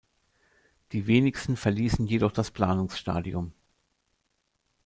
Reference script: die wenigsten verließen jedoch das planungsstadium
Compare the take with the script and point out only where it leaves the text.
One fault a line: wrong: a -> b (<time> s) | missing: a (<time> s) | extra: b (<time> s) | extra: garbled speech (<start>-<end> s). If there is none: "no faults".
no faults